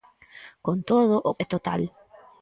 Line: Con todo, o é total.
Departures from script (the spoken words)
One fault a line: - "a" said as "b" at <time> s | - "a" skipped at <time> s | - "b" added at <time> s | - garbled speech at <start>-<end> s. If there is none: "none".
none